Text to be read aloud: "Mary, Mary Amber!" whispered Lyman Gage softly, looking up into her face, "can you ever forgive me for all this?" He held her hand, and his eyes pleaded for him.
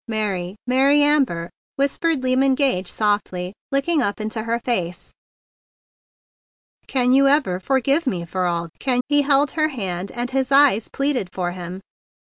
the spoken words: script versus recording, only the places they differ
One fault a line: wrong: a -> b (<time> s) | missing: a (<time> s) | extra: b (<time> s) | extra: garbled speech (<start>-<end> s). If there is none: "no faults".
wrong: this -> can (8.8 s)